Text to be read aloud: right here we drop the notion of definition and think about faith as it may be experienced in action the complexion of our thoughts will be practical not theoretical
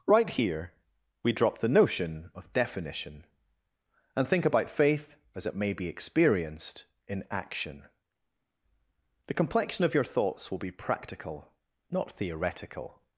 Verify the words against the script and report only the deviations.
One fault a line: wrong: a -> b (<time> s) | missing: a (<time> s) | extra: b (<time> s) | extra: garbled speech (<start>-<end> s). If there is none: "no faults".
wrong: our -> your (9.9 s)